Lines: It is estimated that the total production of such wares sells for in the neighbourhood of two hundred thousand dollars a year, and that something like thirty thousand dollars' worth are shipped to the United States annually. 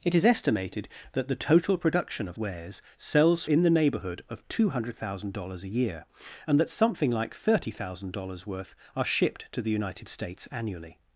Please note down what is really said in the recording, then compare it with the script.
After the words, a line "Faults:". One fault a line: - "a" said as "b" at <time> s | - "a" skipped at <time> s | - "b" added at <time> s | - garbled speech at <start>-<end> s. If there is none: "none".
It is estimated that the total production of wares sells in the neighbourhood of two hundred thousand dollars a year, and that something like thirty thousand dollars' worth are shipped to the United States annually.
Faults:
- "such" skipped at 2.4 s
- "for" skipped at 3.4 s